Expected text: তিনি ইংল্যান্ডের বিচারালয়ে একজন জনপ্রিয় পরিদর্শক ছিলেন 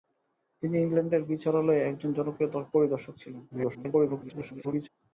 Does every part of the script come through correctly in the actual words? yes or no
no